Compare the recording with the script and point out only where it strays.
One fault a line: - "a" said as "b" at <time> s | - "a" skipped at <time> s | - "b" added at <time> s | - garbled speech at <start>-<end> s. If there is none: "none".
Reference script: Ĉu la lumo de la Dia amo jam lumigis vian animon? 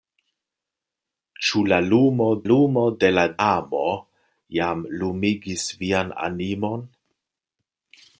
- "lumo" added at 2.5 s
- "Dia" skipped at 3.3 s